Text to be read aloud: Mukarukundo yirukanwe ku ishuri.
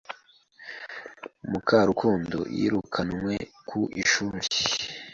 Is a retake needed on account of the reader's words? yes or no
no